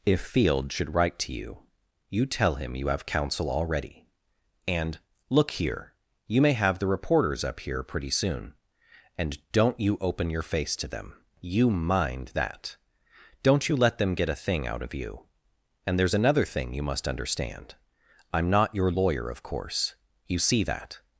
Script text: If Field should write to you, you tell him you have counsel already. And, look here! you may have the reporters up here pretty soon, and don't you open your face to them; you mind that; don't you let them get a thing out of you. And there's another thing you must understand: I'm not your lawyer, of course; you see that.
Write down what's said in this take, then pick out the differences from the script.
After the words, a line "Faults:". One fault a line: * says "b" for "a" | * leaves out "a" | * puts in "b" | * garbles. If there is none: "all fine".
If Field should write to you, you tell him you have counsel already. And, look here! you may have the reporters up here pretty soon, and don't you open your face to them; you mind that; don't you let them get a thing out of you. And there's another thing you must understand: I'm not your lawyer, of course; you see that.
Faults:
all fine